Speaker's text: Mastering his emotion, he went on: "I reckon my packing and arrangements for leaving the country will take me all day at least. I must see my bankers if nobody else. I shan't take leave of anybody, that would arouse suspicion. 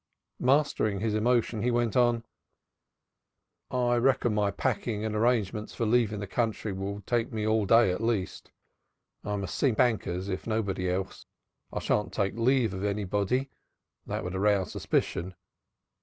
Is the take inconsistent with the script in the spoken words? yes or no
yes